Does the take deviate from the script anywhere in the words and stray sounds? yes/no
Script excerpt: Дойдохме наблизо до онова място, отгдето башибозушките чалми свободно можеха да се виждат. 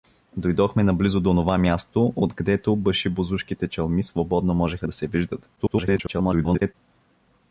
yes